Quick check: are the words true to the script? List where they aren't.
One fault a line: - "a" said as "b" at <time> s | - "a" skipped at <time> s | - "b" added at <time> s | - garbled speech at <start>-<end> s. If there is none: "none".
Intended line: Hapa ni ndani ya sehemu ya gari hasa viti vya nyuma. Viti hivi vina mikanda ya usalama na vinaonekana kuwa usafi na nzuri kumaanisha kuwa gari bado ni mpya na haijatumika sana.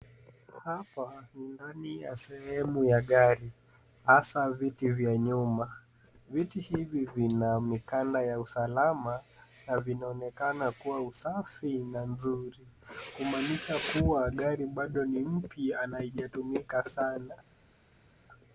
none